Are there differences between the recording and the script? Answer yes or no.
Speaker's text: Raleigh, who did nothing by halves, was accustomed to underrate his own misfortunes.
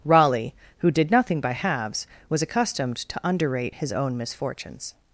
no